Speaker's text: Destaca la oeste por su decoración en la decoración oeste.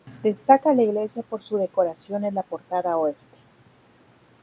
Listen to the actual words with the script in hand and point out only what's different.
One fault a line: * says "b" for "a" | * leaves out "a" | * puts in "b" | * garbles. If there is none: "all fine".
* says "iglesia" for "oeste"
* says "portada" for "decoración"